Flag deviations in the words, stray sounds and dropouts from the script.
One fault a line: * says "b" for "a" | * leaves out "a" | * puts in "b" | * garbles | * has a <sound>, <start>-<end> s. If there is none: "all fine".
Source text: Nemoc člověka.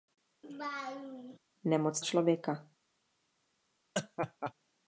* has a laugh, 0.4-1.4 s
* has a laugh, 3.9-4.5 s